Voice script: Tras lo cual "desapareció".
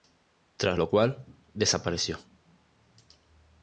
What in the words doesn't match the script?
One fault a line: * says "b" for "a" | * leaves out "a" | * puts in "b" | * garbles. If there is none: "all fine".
all fine